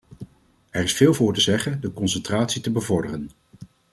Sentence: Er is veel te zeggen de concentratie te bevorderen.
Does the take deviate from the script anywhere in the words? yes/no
yes